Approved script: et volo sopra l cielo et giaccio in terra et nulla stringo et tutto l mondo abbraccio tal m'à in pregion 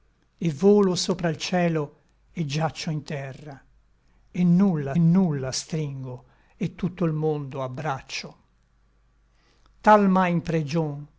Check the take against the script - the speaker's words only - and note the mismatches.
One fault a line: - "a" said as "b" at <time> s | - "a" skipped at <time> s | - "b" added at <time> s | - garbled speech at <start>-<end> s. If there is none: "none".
- "nulla" added at 5.0 s